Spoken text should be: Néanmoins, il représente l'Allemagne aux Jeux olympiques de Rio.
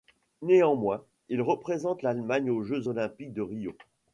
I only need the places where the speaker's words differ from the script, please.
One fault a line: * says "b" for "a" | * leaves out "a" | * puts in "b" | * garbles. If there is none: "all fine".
all fine